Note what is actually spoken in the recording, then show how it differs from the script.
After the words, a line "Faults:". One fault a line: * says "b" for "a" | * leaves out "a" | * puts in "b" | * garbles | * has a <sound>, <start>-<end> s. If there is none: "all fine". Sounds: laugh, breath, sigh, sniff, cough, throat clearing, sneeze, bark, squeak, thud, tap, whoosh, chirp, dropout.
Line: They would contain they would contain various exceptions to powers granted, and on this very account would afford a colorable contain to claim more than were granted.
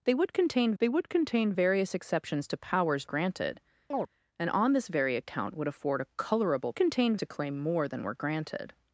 They would contain they would contain various exceptions to powers granted, and on this very account would afford a colorable contain to claim more than were granted.
Faults:
* has a chirp, 3.9-4.1 s